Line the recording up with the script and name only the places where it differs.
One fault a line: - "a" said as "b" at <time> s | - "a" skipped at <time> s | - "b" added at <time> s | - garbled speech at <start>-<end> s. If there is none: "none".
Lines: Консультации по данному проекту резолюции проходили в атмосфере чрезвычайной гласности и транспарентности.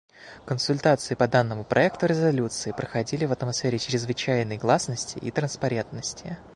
none